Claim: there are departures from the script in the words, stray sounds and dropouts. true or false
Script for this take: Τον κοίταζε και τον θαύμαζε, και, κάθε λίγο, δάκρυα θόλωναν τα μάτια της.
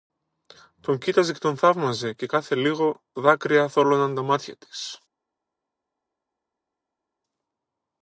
false